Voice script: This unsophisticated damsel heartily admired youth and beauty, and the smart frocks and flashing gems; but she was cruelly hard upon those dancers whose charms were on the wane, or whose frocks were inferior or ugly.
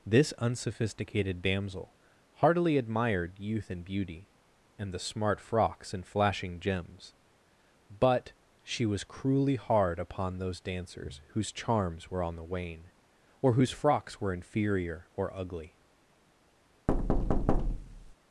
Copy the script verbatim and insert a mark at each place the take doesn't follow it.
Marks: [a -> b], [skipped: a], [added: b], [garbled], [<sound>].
This unsophisticated damsel heartily admired youth and beauty, and the smart frocks and flashing gems; but she was cruelly hard upon those dancers whose charms were on the wane, or whose frocks were inferior or ugly. [thud]